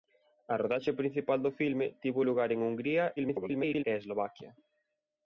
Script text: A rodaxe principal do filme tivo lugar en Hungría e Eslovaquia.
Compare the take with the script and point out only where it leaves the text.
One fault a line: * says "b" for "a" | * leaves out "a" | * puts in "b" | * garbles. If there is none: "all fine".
* garbles